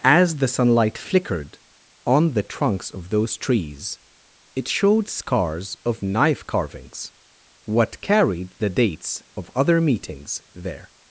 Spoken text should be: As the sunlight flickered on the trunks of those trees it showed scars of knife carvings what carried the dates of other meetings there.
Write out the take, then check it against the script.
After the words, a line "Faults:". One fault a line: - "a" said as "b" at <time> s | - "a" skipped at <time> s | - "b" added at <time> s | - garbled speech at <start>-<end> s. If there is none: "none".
As the sunlight flickered on the trunks of those trees it showed scars of knife carvings what carried the dates of other meetings there.
Faults:
none